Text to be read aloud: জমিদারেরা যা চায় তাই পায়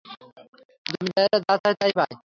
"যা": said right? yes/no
yes